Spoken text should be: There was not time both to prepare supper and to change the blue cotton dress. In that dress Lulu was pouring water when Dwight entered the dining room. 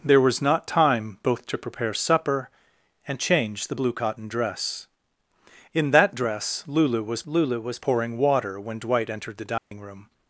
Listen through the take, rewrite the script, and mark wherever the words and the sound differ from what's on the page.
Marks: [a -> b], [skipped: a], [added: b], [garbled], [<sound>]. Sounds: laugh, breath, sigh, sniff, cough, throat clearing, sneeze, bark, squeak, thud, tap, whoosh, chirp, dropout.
There was not time both to prepare supper and [skipped: to] change the blue cotton dress. In that dress Lulu was [added: Lulu was] pouring water when Dwight entered the dining [dropout] room.